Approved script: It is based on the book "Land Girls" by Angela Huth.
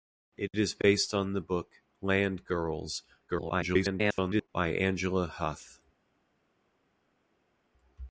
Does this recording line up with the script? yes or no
no